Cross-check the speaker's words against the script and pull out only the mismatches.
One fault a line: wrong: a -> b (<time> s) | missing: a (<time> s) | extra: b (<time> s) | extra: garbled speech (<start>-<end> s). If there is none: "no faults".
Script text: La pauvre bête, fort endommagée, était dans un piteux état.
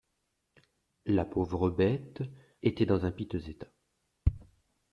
missing: fort endommagée (2.2 s)